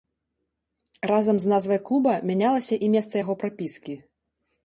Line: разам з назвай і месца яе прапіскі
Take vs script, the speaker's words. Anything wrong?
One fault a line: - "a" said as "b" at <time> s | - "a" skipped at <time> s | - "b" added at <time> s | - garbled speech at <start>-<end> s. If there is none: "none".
- "клуба мянялася" added at 1.9 s
- "яе" said as "яго" at 3.2 s